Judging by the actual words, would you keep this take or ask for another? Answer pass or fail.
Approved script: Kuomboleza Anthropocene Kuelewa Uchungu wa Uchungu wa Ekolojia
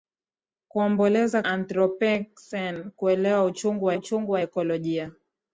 pass